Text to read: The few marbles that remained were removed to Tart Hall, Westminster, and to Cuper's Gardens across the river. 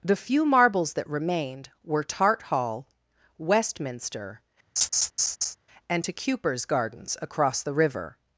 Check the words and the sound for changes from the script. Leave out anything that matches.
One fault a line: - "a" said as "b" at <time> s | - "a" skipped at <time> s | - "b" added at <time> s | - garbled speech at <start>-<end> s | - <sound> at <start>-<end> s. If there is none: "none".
- "removed to" skipped at 2.0 s
- laugh at 4.8-5.6 s